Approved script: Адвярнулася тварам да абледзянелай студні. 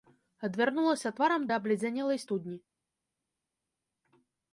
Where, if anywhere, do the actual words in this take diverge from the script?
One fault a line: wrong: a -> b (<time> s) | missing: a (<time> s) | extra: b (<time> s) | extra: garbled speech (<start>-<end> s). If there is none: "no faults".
no faults